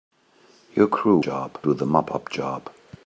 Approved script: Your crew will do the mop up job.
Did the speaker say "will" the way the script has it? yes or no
no